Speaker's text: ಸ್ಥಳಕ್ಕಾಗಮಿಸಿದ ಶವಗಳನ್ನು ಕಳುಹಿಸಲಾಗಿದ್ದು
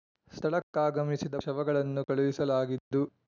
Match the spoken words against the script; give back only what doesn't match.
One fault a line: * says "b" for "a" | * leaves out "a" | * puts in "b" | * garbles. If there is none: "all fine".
all fine